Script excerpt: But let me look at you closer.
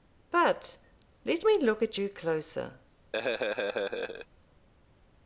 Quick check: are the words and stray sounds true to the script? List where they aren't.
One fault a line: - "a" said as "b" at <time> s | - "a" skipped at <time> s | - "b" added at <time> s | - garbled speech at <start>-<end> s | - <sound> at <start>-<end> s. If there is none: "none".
- laugh at 3.1-4.3 s